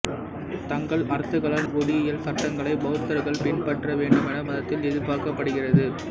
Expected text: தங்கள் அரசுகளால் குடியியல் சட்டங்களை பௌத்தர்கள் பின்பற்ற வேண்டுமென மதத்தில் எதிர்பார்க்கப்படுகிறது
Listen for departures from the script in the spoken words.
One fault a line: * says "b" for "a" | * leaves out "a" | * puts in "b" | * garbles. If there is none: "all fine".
all fine